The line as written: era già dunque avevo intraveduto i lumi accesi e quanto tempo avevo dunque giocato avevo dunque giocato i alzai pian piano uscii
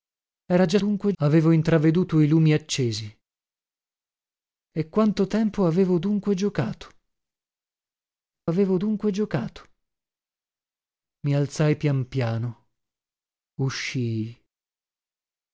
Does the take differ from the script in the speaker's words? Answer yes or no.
no